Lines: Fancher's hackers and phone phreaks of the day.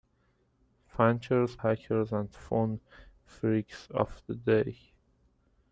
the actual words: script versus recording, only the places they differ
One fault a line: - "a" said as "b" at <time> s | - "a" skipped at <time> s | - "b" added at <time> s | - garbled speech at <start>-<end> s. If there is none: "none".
none